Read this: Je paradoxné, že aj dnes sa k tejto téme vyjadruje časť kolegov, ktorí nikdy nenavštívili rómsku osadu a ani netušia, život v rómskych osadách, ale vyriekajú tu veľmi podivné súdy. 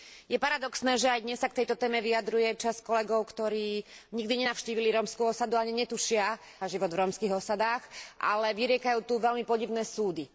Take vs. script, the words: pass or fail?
pass